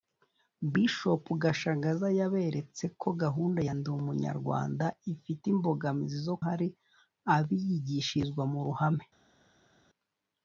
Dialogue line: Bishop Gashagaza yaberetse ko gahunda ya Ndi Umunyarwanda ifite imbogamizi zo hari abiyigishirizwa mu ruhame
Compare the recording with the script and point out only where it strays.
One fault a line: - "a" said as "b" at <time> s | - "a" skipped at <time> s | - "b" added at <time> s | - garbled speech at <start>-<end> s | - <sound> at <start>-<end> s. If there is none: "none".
none